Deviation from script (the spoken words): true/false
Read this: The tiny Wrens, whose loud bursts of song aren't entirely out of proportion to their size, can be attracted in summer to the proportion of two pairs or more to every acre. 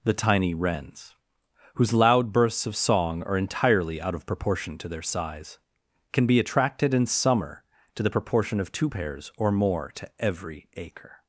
true